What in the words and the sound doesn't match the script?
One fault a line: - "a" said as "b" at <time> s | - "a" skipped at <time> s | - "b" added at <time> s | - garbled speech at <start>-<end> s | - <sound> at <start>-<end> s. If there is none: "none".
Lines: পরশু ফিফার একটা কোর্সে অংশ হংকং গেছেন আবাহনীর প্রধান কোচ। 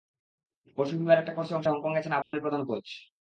- dropout at 2.2-2.3 s